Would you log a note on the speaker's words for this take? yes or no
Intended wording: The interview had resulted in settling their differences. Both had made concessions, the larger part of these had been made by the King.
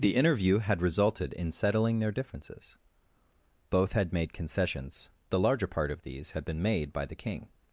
no